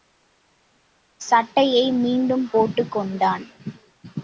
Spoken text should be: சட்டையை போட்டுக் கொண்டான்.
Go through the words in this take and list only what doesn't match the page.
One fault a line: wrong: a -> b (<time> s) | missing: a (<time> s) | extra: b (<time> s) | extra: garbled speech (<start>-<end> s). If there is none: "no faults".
extra: மீண்டும் (1.9 s)